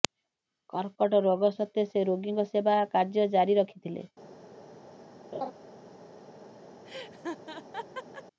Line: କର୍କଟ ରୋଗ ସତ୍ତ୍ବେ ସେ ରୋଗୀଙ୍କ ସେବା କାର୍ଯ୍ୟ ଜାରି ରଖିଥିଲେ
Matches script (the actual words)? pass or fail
pass